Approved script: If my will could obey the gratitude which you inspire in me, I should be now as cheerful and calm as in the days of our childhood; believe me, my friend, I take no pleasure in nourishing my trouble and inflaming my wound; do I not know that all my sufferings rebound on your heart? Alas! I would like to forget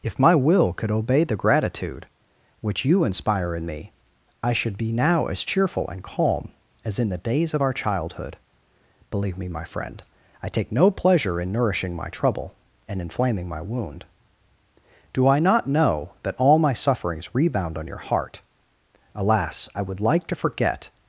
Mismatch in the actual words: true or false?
false